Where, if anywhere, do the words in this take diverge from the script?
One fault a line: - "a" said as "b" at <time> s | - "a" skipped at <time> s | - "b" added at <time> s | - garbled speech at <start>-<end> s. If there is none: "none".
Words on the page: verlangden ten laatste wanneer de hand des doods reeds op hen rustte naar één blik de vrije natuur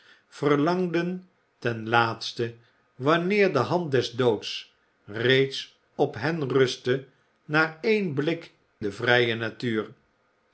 none